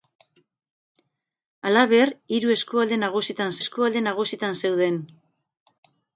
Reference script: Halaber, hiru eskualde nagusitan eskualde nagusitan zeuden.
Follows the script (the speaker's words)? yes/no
yes